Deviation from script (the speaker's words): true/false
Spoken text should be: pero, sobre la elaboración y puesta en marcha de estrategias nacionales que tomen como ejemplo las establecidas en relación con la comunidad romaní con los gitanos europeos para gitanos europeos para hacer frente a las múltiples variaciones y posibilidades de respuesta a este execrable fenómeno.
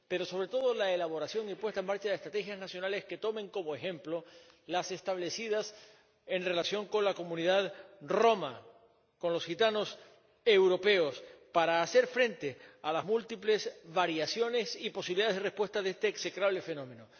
true